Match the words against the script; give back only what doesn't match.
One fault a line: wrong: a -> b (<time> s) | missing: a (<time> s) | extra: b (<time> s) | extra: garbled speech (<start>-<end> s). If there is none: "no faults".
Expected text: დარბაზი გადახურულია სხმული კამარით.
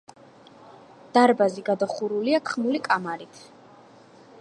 no faults